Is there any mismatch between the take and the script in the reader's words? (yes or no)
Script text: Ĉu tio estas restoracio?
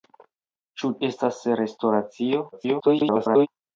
yes